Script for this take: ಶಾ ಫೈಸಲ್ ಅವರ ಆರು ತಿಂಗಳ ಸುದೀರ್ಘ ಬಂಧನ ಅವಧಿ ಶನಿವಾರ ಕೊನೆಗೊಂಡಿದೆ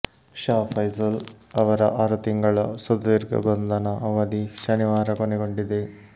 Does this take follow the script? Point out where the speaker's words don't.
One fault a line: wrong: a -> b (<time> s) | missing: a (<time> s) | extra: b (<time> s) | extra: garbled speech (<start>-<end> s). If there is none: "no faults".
no faults